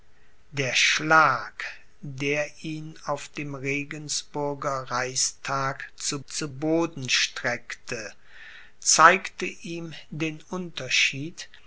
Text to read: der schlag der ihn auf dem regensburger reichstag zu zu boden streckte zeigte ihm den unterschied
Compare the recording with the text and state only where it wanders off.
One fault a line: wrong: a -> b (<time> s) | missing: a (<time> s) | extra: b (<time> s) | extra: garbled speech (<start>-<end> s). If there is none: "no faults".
no faults